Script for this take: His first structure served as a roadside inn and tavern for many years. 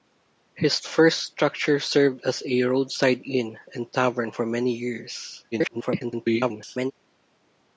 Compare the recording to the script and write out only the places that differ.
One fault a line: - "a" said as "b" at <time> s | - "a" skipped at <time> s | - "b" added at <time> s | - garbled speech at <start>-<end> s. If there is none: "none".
- garbled speech at 5.5-6.9 s